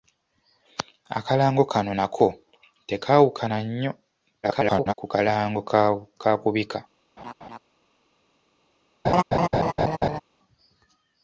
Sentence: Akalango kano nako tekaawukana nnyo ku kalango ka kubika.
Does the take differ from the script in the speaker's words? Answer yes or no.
yes